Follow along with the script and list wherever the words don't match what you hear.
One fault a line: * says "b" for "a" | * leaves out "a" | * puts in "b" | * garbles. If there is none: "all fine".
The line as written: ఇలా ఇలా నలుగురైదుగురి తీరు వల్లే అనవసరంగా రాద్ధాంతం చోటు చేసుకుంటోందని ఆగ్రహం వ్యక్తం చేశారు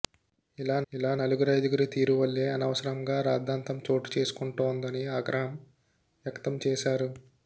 all fine